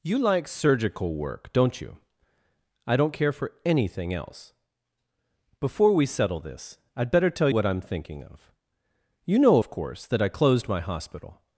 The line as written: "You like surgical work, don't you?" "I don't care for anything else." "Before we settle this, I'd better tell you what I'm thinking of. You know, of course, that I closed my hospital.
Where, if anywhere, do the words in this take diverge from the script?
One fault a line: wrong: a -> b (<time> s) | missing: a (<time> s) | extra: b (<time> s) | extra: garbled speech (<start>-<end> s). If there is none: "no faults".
missing: you (7.5 s)